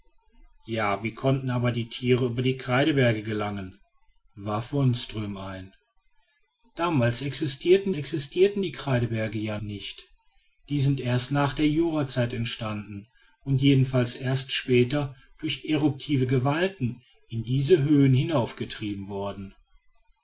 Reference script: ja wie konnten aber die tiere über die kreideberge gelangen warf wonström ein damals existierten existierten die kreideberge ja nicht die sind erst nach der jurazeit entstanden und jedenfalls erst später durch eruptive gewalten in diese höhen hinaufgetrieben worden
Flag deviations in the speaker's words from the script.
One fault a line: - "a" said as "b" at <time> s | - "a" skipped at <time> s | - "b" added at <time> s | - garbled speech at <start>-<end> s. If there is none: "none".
none